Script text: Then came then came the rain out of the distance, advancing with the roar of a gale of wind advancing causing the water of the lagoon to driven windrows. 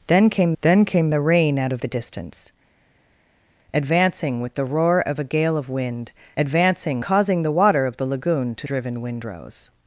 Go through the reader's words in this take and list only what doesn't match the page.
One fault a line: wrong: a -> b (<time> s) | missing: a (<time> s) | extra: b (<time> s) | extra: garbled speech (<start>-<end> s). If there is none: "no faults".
no faults